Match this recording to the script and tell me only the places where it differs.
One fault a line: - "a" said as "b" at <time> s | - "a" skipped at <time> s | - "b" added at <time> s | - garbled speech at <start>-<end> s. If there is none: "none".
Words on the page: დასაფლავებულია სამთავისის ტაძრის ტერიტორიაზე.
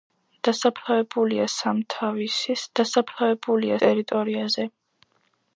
- "ტაძრის" said as "დასაფლავებულია" at 2.8 s